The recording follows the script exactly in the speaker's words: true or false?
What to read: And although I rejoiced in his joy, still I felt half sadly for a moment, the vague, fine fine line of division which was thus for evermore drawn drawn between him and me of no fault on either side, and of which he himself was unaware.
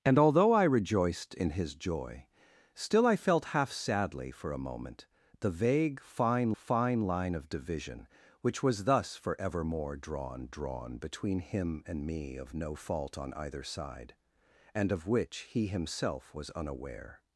true